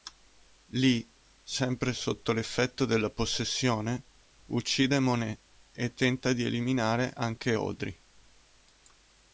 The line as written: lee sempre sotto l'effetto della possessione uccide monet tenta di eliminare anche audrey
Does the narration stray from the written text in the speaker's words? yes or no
yes